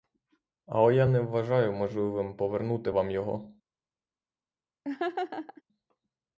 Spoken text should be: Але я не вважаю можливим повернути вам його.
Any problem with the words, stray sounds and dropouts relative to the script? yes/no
yes